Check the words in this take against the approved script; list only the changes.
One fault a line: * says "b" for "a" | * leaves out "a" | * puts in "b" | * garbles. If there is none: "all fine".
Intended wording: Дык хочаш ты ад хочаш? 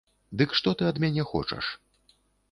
* says "што" for "хочаш"
* puts in "мяне"